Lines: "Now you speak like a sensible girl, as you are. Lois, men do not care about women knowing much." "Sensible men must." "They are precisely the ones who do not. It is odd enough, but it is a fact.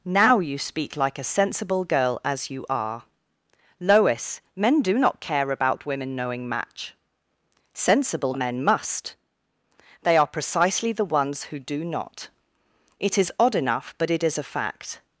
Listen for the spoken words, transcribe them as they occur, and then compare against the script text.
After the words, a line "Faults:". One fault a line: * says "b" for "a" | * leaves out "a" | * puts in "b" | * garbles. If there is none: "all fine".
"Now you speak like a sensible girl, as you are. Lois, men do not care about women knowing match." "Sensible men must." "They are precisely the ones who do not. It is odd enough, but it is a fact.
Faults:
* says "match" for "much"